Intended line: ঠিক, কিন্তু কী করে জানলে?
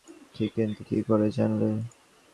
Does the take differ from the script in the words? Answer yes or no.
no